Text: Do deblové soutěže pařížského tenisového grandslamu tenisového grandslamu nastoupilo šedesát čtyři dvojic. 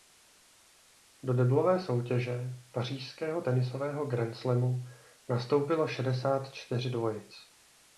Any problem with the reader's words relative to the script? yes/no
yes